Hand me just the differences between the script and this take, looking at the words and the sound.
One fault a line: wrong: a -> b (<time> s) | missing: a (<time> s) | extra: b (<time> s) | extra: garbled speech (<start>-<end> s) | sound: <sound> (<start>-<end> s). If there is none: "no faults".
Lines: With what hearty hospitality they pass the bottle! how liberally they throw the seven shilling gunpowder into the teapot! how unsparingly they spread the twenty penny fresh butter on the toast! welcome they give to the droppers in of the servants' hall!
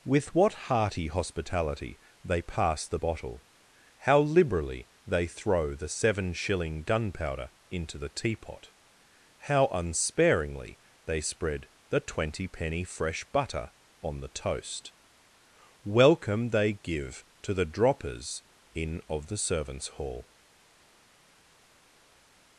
no faults